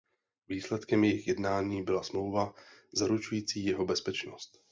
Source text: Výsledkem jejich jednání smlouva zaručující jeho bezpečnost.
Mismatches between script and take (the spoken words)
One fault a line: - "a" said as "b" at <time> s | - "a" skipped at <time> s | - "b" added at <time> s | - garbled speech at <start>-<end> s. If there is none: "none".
- "byla" added at 1.8 s